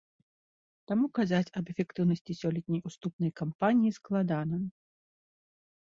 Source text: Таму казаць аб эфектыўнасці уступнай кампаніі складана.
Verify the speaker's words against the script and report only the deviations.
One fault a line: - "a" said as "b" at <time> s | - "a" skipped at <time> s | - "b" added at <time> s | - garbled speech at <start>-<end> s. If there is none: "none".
- "сёлетняй" added at 2.4 s